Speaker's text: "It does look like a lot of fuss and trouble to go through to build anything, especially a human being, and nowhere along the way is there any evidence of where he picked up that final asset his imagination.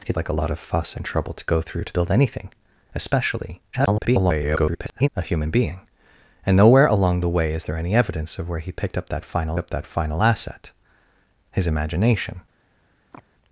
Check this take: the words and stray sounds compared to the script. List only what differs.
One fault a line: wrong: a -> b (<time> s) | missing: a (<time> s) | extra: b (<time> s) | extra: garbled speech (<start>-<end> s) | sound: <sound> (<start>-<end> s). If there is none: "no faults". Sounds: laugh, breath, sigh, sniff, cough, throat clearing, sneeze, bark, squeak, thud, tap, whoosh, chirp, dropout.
missing: does look (0.1 s)
extra: garbled speech (3.7-5.1 s)
extra: up that final (9.6 s)
sound: chirp (13.1-13.2 s)